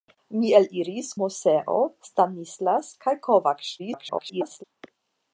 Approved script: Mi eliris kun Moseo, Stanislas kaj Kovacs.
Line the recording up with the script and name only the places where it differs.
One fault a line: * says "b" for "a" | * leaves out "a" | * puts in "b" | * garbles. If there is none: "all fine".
* leaves out "kun"
* garbles